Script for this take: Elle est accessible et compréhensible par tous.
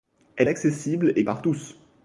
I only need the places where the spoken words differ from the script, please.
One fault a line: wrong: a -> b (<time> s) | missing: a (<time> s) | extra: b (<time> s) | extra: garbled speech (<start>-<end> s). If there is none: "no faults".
missing: est (0.5 s)
missing: compréhensible (1.2 s)